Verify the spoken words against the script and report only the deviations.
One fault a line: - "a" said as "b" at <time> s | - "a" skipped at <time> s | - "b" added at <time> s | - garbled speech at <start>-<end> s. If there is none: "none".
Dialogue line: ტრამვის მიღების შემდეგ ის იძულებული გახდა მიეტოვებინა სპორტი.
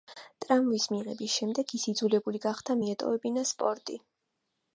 none